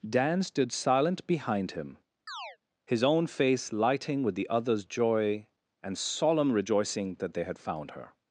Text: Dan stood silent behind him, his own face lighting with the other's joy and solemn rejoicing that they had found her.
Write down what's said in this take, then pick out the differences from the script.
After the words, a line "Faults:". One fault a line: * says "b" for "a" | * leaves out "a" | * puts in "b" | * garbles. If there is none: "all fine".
Dan stood silent behind him, his own face lighting with the other's joy and solemn rejoicing that they had found her.
Faults:
all fine